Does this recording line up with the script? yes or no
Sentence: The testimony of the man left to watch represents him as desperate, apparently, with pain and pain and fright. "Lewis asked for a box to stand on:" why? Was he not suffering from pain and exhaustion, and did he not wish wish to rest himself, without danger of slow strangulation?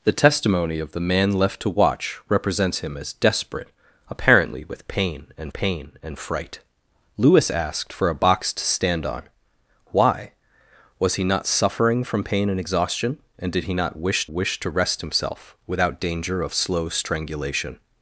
yes